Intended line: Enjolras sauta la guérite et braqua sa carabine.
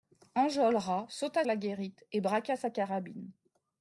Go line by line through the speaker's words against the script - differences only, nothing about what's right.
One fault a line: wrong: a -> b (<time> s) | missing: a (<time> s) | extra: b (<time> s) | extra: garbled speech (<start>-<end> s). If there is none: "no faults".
no faults